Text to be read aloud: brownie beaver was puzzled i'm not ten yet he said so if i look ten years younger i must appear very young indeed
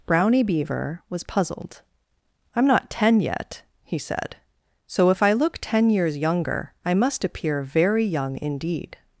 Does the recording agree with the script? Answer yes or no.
yes